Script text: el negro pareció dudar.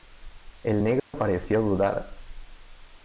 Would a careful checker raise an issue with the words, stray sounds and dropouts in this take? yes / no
yes